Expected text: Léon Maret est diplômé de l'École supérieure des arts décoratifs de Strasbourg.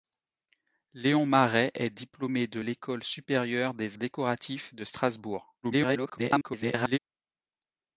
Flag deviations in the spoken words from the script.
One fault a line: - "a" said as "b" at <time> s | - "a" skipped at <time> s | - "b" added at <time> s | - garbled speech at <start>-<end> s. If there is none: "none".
- "arts" skipped at 4.0 s
- garbled speech at 5.6-7.0 s